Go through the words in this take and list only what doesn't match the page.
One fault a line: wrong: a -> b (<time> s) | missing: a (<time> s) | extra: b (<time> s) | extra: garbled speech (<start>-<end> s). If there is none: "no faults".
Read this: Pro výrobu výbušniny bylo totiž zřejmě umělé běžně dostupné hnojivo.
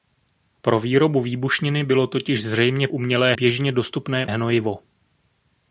no faults